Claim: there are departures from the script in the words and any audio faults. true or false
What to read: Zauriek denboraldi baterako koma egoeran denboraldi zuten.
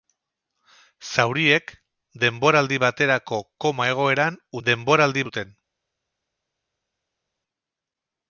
false